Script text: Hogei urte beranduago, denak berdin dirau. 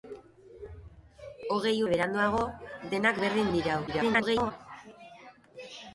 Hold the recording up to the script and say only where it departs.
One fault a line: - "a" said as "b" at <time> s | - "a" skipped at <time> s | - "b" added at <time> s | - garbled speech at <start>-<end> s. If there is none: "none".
- "urte" skipped at 1.8 s
- garbled speech at 3.9-4.5 s